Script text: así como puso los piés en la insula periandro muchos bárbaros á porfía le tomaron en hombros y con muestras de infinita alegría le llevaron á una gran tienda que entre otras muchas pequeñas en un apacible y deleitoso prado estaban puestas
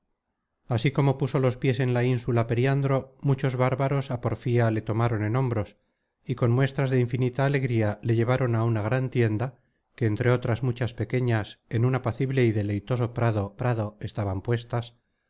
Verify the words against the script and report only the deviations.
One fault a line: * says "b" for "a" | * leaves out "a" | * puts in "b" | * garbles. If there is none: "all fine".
* puts in "prado"